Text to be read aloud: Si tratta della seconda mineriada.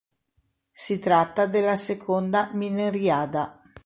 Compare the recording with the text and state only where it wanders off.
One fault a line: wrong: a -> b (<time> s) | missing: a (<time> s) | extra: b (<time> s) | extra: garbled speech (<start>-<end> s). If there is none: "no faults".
no faults